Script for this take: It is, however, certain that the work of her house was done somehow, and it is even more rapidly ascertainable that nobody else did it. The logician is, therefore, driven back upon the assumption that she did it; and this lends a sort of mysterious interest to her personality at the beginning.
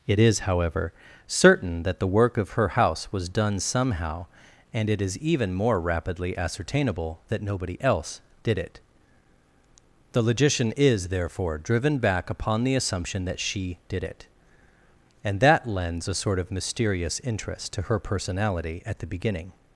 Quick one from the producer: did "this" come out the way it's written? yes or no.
no